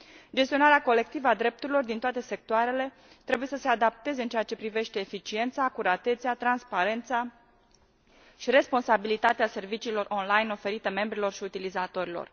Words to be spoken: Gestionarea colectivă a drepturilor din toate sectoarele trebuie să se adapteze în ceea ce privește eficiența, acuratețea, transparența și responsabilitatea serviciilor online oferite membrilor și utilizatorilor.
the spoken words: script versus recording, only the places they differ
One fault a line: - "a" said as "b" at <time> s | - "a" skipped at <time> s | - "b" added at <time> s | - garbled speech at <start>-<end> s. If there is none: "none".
none